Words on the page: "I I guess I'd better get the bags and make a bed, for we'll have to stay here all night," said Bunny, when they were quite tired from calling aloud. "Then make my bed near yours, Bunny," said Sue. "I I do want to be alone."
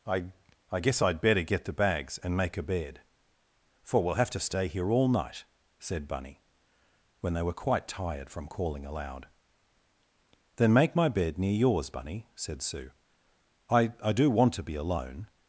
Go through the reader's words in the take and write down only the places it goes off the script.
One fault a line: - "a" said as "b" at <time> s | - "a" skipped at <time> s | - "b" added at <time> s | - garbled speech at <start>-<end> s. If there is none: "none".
none